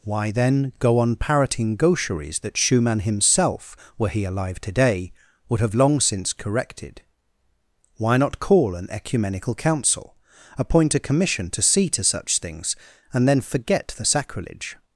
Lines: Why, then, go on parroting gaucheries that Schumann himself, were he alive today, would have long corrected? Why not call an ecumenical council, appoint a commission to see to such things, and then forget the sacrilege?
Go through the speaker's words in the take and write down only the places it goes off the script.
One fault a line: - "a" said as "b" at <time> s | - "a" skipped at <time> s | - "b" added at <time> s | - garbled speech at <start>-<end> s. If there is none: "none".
- "since" added at 6.0 s